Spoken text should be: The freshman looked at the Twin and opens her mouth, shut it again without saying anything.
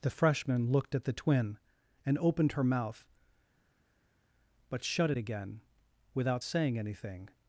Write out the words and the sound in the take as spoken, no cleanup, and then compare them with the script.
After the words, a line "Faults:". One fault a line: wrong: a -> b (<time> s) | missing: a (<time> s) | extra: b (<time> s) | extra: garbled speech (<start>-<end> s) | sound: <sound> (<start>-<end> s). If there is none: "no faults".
The freshman looked at the Twin and opened her mouth, but shut it again without saying anything.
Faults:
wrong: opens -> opened (2.2 s)
extra: but (4.7 s)